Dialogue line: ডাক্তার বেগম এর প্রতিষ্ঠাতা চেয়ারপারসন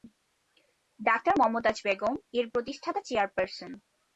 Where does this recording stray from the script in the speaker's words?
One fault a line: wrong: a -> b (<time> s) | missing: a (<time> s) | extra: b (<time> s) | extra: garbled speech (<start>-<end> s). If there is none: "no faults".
extra: মমতাজ (1.4 s)